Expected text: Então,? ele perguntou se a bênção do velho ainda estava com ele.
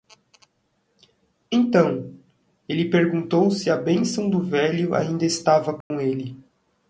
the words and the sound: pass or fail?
fail